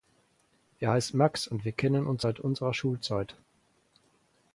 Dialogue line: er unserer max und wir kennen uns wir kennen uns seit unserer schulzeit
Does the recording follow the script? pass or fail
fail